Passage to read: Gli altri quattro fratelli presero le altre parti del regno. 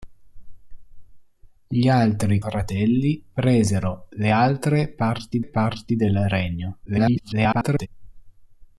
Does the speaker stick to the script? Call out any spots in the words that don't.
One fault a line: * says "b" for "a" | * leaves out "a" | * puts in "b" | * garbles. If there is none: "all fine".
* leaves out "quattro"
* puts in "parti"
* garbles